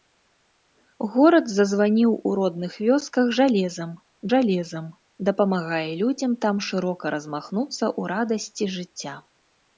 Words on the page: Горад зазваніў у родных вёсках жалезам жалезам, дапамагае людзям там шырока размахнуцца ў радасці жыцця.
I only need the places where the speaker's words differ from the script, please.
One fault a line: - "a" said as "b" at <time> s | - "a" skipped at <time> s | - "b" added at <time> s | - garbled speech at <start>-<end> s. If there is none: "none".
none